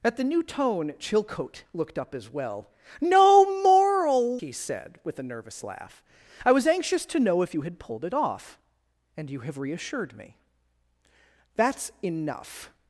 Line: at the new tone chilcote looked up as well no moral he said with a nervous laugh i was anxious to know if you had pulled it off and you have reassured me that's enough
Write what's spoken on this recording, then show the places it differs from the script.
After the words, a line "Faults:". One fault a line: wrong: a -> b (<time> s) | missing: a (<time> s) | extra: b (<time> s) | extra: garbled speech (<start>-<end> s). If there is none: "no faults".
at the new tone chilcote looked up as well no moral he said with a nervous laugh i was anxious to know if you had pulled it off and you have reassured me that's enough
Faults:
no faults